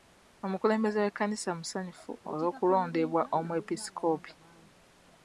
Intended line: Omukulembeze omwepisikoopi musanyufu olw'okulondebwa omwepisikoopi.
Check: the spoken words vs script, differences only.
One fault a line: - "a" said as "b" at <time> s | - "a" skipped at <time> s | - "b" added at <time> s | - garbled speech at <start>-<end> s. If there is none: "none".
- "omwepisikoopi" said as "w'ekkanisa" at 1.0 s